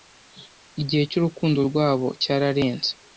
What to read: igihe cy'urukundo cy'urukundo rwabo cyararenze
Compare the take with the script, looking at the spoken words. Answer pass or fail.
fail